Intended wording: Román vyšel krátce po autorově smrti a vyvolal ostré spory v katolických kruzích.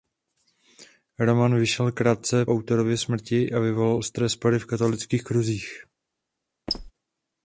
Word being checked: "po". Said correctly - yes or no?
no